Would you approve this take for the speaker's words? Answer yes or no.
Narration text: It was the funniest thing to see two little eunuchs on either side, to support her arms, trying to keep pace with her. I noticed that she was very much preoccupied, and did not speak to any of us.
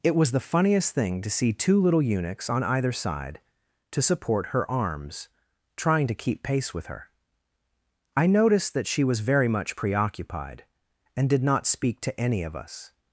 yes